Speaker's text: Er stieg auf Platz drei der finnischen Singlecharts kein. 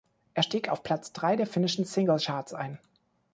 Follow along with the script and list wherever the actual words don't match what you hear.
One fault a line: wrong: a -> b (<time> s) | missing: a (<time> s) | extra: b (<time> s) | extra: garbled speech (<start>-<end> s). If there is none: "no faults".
wrong: kein -> ein (2.5 s)